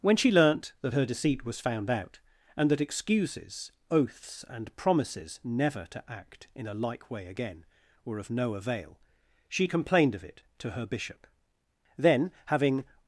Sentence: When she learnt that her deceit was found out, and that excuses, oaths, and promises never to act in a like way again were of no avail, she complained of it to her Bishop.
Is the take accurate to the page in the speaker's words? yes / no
no